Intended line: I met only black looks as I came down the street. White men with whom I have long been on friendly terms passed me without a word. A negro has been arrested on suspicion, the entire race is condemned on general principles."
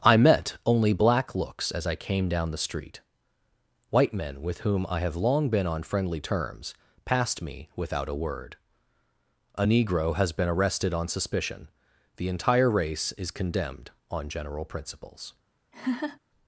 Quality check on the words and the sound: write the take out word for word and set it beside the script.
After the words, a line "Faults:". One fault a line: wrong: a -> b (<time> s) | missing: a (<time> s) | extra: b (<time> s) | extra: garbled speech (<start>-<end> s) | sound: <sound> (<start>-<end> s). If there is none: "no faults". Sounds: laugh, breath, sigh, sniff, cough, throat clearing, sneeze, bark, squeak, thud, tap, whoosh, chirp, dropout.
I met only black looks as I came down the street. White men with whom I have long been on friendly terms passed me without a word. A negro has been arrested on suspicion, the entire race is condemned on general principles."
Faults:
sound: laugh (15.7-16.2 s)